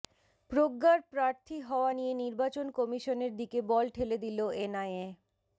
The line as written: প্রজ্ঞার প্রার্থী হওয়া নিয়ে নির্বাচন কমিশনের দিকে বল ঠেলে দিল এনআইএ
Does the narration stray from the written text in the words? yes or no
no